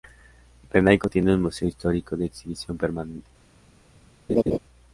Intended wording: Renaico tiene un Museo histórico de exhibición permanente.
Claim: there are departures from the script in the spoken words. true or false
false